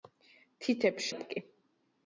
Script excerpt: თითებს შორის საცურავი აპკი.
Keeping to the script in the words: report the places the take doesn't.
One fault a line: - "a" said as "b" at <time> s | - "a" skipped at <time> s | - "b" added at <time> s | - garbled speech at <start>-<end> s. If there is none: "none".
- "შორის საცურავი" skipped at 1.1 s